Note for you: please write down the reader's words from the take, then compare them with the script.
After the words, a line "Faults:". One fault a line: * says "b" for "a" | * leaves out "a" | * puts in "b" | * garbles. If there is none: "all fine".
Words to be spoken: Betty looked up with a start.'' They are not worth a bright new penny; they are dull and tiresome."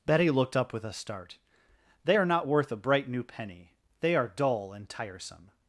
Betty looked up with a start.'' They are not worth a bright new penny; they are dull and tiresome."
Faults:
all fine